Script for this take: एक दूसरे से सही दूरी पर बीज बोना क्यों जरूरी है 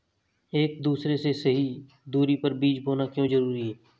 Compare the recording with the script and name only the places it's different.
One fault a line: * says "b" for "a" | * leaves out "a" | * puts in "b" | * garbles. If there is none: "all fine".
all fine